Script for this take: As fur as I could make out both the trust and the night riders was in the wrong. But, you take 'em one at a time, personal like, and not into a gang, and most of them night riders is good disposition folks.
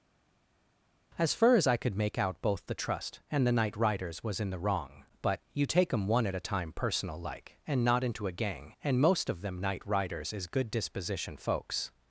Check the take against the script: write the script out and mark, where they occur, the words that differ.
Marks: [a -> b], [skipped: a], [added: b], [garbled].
As fur as I could make out both the trust and the night riders was in the wrong. But, you take 'em one at a time, personal like, and not into a gang, and most of them night riders is good disposition folks.